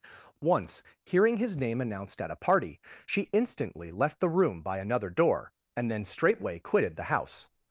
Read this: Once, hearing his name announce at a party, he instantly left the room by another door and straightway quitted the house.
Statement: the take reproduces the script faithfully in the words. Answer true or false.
false